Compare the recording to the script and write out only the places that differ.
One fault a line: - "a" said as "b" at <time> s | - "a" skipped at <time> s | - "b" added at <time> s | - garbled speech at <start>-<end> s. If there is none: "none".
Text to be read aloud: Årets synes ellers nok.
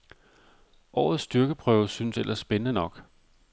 - "styrkeprøve" added at 1.2 s
- "spændende" added at 2.4 s